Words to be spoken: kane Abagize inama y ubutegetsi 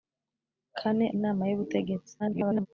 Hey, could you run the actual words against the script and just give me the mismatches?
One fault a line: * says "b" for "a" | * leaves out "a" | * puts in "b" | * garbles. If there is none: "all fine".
* leaves out "Abagize"
* garbles